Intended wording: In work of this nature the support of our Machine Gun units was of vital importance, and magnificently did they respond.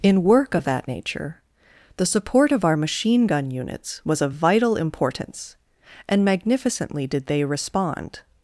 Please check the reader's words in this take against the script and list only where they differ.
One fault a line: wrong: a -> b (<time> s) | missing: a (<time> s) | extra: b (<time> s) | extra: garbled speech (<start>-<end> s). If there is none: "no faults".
wrong: this -> that (0.6 s)